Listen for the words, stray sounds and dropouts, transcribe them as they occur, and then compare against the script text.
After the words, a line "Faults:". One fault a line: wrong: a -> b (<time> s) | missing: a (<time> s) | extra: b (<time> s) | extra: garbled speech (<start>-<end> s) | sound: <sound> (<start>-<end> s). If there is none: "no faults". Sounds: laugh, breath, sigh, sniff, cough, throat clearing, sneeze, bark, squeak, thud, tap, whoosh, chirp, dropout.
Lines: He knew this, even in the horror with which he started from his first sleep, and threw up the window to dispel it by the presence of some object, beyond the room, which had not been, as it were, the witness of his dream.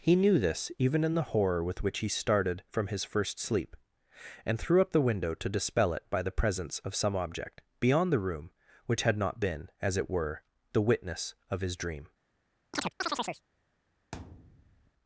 He knew this, even in the horror with which he started from his first sleep, and threw up the window to dispel it by the presence of some object, beyond the room, which had not been, as it were, the witness of his dream.
Faults:
sound: chirp (12.7-13.4 s)
sound: thud (14.1-14.9 s)